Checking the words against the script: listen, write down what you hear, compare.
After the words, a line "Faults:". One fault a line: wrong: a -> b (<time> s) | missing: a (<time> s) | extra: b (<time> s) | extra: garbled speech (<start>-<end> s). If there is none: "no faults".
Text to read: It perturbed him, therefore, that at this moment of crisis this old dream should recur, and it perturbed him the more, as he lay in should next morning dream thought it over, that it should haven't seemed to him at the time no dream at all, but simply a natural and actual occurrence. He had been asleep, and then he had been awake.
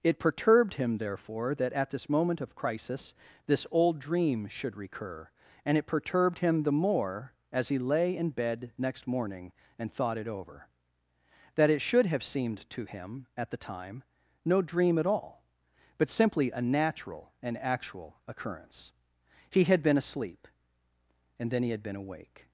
It perturbed him, therefore, that at this moment of crisis this old dream should recur, and it perturbed him the more, as he lay in bed next morning and thought it over, that it should have seemed to him at the time no dream at all, but simply a natural and actual occurrence. He had been asleep, and then he had been awake.
Faults:
wrong: should -> bed (8.3 s)
wrong: dream -> and (9.8 s)
wrong: haven't -> have (12.1 s)